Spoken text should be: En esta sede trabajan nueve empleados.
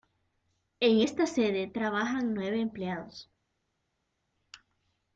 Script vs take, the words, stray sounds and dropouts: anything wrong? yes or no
no